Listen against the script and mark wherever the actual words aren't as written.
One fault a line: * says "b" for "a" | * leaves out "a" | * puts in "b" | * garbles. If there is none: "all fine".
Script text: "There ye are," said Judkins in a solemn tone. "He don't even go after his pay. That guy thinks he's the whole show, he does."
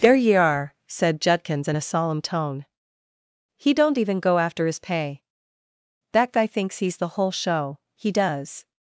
all fine